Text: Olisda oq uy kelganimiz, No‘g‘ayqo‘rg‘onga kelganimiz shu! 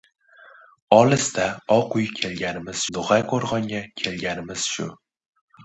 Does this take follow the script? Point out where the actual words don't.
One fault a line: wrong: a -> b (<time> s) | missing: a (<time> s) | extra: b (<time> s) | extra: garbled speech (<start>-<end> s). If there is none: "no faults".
no faults